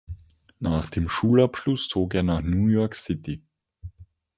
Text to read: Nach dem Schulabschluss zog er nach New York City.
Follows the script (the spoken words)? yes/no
yes